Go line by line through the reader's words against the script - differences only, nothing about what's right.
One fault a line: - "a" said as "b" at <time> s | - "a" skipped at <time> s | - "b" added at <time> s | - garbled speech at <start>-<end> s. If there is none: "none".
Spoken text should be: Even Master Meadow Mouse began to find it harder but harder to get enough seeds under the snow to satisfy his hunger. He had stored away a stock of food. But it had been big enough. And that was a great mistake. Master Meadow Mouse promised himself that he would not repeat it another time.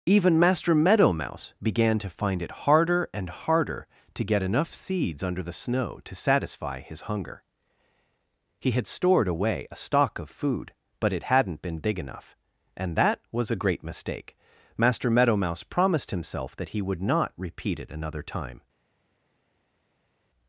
- "but" said as "and" at 3.1 s
- "had" said as "hadn't" at 11.3 s